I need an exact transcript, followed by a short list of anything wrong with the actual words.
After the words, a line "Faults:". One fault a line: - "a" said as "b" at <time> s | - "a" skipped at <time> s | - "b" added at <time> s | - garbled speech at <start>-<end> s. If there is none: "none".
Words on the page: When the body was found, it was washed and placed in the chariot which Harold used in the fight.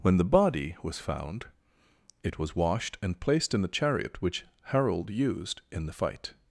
When the body was found, it was washed and placed in the chariot which Harold used in the fight.
Faults:
none